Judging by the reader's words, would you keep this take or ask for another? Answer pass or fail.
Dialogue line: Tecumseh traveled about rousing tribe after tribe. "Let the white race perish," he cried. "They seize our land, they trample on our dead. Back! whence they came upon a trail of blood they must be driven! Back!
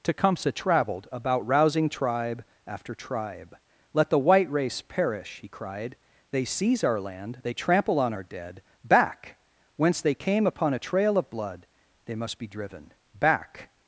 pass